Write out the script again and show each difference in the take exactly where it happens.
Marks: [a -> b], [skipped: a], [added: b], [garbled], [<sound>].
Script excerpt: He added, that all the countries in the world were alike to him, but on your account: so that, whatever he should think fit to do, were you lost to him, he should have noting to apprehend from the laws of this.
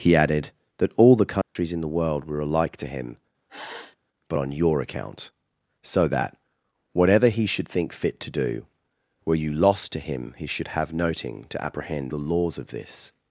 He added, that all the countries [dropout] in the world were alike to him, [sniff] but on your account: so that, whatever he should think fit to do, were you lost to him, he should have noting to apprehend [skipped: from] the laws of this.